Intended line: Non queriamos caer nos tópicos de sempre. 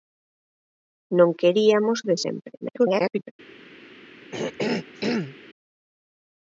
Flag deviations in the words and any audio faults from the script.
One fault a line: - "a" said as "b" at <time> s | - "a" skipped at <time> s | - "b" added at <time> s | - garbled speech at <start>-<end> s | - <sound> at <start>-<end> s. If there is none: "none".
- "caer nos tópicos" skipped at 2.0 s
- garbled speech at 2.6-3.3 s
- throat clearing at 4.3-5.4 s